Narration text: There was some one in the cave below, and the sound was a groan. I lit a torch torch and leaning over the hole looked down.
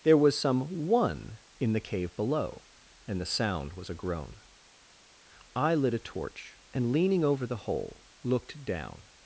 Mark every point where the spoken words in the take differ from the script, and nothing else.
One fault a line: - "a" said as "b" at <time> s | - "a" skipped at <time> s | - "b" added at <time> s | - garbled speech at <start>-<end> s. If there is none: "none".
- "torch" skipped at 6.6 s